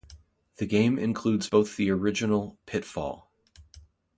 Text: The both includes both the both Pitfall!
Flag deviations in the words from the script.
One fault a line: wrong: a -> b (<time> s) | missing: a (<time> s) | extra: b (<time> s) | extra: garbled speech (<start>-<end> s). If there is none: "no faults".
wrong: both -> game (0.7 s)
wrong: both -> original (1.9 s)